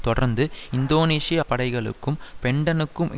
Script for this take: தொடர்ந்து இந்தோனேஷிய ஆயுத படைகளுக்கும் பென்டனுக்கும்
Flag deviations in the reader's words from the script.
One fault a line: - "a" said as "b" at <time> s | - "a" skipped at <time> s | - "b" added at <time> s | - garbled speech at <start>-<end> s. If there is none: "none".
- "ஆயுத" skipped at 1.4 s